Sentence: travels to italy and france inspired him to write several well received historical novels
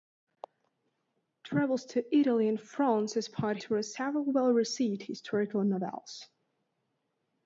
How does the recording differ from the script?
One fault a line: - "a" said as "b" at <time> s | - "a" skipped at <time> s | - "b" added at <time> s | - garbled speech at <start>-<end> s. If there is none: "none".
- "him" skipped at 3.6 s